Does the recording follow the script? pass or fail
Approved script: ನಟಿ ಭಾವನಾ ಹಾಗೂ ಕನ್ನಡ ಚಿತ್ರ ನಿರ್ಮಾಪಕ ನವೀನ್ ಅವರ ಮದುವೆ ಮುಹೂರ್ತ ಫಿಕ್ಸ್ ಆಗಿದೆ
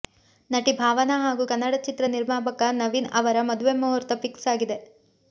pass